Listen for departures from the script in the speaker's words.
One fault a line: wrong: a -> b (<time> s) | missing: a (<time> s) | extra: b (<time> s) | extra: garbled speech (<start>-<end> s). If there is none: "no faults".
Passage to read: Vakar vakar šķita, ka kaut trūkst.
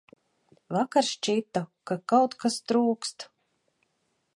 missing: vakar (1.1 s)
extra: kas (2.5 s)